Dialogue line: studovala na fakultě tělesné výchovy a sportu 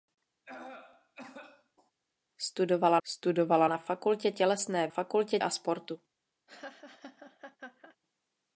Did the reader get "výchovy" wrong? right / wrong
wrong